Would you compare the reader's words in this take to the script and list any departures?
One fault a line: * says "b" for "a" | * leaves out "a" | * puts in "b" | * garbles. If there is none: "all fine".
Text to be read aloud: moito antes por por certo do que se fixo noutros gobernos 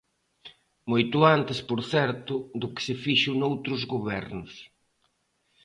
* leaves out "por"